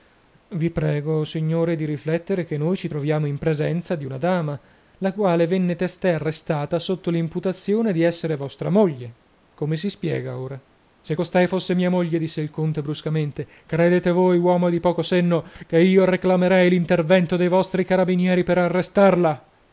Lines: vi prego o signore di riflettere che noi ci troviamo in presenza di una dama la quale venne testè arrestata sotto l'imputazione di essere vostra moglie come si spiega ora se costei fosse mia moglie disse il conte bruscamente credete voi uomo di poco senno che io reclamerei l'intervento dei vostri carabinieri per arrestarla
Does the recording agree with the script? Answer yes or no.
yes